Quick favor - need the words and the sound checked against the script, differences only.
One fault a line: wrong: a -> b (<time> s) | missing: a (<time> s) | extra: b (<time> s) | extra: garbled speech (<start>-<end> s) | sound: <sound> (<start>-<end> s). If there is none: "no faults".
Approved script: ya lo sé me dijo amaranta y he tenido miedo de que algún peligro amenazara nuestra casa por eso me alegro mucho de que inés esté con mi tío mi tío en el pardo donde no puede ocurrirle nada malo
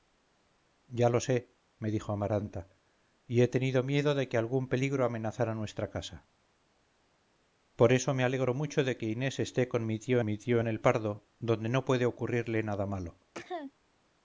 sound: cough (13.3-13.7 s)